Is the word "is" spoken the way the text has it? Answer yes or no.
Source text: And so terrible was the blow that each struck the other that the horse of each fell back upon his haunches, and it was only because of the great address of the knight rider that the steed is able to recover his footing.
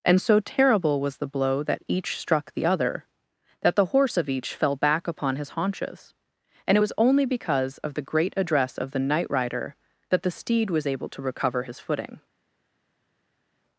no